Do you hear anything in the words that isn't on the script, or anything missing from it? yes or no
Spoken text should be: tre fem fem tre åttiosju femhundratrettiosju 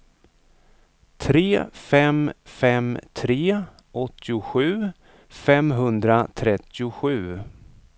no